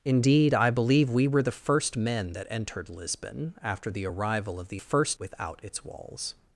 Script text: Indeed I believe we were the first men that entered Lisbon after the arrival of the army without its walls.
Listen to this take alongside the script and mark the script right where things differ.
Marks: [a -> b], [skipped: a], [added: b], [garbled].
Indeed I believe we were the first men that entered Lisbon after the arrival of the [army -> first] without its walls.